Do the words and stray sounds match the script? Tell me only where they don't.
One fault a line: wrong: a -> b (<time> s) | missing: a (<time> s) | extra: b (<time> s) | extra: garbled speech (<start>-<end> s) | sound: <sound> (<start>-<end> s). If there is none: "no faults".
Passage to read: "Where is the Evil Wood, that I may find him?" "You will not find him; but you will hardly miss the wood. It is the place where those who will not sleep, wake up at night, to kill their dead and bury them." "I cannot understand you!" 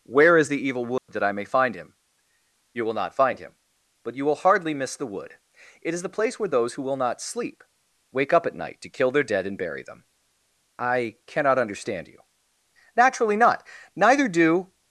sound: dropout (1.0-1.1 s)
extra: Naturally not Neither do (13.0 s)